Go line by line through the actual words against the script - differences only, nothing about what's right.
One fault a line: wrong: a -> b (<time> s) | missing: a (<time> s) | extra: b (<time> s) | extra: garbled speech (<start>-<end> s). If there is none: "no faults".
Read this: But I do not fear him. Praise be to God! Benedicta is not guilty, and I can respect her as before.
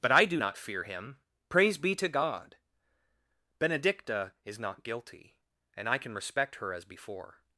no faults